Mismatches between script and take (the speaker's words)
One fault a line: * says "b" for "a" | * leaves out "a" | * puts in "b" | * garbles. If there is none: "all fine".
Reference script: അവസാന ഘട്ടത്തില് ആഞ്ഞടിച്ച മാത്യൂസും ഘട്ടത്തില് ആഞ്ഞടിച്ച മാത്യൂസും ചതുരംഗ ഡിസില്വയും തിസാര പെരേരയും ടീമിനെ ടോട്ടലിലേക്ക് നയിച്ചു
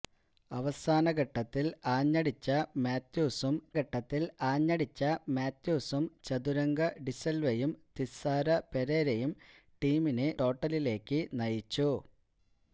all fine